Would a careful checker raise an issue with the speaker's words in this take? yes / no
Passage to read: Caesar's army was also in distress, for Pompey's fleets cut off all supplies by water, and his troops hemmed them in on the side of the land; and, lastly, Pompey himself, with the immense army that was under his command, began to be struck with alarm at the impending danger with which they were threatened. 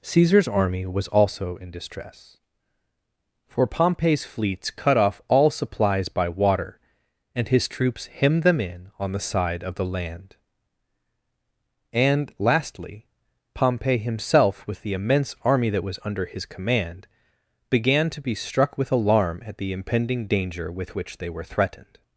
no